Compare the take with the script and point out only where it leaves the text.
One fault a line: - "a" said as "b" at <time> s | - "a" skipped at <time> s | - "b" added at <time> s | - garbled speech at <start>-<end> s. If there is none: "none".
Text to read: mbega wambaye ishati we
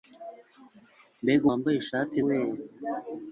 none